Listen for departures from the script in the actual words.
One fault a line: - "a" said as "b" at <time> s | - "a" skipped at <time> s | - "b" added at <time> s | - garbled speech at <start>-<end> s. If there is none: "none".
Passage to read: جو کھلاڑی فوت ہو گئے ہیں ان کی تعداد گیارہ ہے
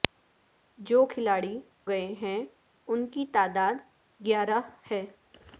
- "فوت ہو" skipped at 1.6 s